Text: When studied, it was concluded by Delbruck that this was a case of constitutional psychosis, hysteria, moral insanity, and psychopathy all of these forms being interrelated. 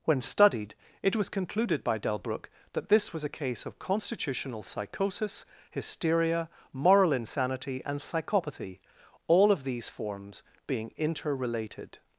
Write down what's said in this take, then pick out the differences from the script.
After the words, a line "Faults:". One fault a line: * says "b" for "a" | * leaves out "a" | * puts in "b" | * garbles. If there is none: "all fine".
When studied, it was concluded by Delbruck that this was a case of constitutional psychosis, hysteria, moral insanity, and psychopathy all of these forms being interrelated.
Faults:
all fine